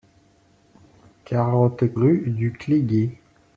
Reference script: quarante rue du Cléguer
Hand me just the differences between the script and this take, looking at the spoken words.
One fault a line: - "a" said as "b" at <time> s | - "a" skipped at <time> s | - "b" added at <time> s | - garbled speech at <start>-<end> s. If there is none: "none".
none